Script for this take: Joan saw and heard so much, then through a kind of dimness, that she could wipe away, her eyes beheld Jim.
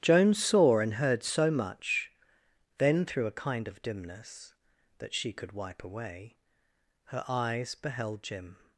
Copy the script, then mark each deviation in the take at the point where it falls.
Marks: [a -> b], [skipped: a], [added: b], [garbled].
Joan saw and heard so much, then through a kind of dimness, that she could wipe away, her eyes beheld Jim.